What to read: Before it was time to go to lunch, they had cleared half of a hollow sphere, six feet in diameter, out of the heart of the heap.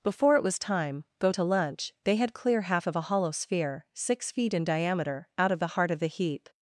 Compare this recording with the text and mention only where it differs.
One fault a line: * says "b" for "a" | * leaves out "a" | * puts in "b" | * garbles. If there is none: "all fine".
* leaves out "to"
* says "clear" for "cleared"